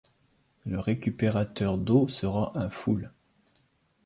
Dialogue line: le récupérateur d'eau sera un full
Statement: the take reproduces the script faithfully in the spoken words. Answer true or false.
true